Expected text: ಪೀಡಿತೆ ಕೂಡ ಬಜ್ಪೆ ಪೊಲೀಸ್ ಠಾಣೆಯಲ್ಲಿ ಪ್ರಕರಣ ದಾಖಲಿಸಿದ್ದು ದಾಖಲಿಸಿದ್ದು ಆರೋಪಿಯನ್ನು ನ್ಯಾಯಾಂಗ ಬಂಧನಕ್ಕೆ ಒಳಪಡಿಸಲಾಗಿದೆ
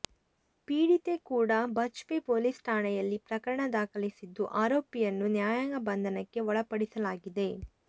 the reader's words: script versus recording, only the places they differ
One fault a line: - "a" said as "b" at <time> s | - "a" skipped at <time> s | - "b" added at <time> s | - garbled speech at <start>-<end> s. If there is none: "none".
- "ದಾಖಲಿಸಿದ್ದು" skipped at 4.4 s